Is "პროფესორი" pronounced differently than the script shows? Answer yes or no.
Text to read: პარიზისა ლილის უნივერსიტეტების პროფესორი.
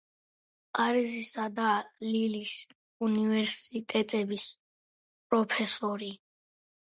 no